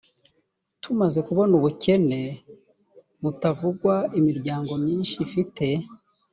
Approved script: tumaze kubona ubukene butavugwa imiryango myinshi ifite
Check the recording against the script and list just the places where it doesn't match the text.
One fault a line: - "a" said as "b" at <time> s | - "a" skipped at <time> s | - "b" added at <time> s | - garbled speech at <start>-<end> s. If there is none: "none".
none